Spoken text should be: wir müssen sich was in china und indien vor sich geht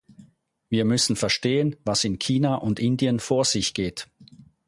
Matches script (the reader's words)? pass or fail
fail